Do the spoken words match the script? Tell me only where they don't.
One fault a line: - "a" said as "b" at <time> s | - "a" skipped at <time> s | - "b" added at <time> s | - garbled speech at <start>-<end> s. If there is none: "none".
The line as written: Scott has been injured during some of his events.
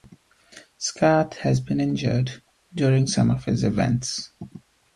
none